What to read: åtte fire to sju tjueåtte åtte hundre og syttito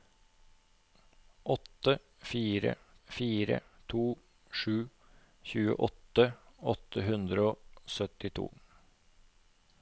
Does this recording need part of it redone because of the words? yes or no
yes